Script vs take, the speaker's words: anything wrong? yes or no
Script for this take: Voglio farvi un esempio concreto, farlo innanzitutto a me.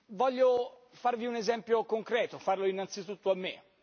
no